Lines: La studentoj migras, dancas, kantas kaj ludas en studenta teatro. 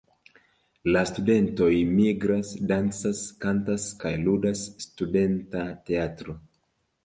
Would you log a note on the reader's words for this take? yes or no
yes